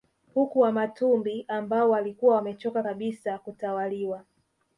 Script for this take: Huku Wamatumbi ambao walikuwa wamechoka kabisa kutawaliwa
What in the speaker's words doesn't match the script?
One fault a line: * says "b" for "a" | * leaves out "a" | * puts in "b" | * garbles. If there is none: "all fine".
all fine